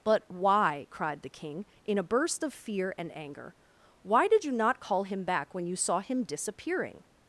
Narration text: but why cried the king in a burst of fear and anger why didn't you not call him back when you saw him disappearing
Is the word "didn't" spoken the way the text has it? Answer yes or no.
no